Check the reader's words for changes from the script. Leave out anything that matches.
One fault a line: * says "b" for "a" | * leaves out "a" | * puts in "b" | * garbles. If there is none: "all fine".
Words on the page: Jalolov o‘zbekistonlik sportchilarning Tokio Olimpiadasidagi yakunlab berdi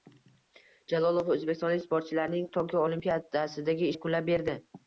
all fine